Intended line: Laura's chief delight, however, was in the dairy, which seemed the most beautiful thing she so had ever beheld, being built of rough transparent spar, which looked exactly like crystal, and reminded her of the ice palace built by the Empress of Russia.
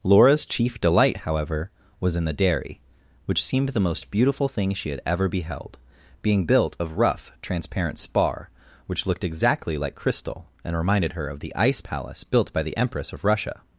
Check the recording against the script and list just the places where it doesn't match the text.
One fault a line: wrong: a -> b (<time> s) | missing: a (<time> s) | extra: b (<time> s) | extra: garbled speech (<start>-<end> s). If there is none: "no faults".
missing: so (4.9 s)